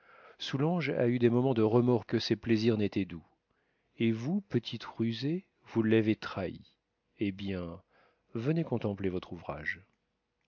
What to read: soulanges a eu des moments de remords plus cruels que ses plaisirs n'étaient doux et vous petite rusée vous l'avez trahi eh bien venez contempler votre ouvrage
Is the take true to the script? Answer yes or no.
no